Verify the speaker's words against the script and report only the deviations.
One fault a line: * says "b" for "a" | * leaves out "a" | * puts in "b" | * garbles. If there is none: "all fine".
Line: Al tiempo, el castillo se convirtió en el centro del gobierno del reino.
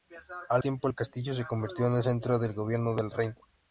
all fine